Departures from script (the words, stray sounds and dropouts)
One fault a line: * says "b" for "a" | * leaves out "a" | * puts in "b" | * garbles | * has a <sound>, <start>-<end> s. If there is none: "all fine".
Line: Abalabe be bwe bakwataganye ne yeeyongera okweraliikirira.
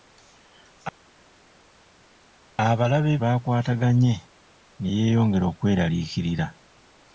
* leaves out "be bwe"